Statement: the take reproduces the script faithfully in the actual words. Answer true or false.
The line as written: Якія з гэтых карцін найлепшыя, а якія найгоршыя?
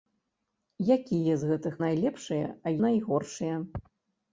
false